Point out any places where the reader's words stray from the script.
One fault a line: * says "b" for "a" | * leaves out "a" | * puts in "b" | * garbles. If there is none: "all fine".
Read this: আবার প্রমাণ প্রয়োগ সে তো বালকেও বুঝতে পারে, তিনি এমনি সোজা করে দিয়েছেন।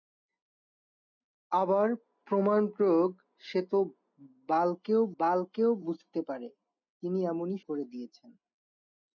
* puts in "বালকেও"
* leaves out "সোজা"